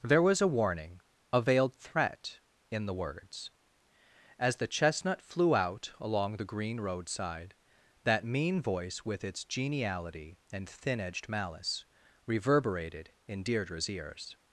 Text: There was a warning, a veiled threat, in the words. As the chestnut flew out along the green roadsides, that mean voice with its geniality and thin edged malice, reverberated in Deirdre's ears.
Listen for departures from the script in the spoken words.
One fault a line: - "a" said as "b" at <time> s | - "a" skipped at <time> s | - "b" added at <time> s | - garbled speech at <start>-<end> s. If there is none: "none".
- "roadsides" said as "roadside" at 6.8 s